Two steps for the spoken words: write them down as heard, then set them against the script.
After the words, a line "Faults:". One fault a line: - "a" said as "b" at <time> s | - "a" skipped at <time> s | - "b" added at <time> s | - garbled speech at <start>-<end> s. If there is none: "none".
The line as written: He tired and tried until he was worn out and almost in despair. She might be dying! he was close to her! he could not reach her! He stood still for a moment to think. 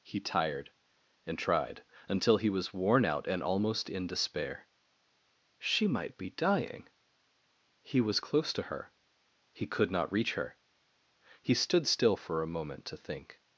He tired and tried until he was worn out and almost in despair. She might be dying! he was close to her! he could not reach her! He stood still for a moment to think.
Faults:
none